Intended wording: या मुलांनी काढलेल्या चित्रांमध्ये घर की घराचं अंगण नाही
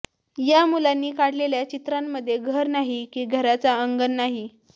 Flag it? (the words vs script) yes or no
yes